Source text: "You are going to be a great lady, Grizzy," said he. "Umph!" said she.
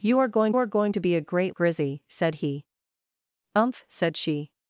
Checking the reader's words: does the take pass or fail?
fail